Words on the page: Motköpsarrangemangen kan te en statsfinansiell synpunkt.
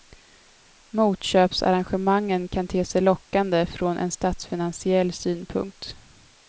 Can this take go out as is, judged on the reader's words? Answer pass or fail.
fail